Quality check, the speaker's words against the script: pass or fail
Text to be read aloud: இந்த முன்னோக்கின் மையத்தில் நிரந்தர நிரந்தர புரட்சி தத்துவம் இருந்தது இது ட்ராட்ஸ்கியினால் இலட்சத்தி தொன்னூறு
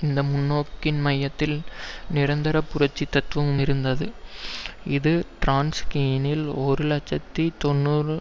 fail